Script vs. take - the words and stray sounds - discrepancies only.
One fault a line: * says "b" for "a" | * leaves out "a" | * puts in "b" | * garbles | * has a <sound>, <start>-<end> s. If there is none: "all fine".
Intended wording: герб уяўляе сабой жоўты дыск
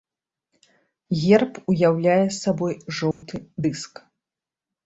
* has a dropout, 3.1-3.2 s